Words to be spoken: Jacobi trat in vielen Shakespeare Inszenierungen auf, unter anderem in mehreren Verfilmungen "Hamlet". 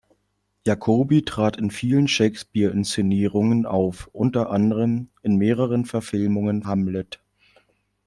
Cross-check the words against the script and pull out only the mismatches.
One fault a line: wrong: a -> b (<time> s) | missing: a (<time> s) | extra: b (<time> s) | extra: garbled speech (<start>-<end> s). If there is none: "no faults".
no faults